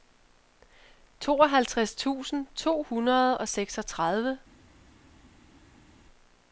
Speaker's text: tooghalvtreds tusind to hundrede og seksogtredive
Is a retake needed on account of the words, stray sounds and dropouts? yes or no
no